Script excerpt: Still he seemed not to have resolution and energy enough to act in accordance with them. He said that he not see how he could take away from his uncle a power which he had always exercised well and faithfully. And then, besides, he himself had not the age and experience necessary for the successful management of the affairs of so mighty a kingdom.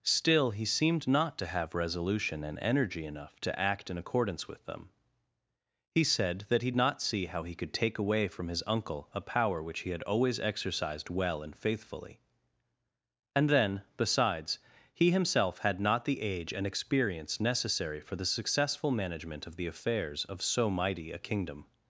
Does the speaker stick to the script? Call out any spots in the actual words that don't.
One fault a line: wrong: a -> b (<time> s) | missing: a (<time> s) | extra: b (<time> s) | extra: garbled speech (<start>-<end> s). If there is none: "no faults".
no faults